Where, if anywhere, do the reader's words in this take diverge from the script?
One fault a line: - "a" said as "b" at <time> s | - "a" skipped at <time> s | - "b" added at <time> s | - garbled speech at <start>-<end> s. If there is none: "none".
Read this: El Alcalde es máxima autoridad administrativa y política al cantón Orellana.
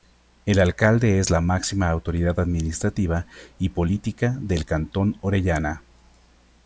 - "la" added at 1.3 s
- "al" said as "del" at 4.4 s